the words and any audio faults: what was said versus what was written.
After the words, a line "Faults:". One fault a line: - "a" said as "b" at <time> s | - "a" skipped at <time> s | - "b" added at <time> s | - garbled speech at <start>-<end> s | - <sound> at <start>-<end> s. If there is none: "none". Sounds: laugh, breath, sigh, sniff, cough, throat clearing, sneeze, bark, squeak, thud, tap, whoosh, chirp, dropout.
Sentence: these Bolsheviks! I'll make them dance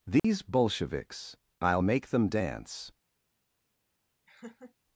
these Bolsheviks! I'll make them dance
Faults:
- dropout at 0.2-0.2 s
- laugh at 4.3-4.7 s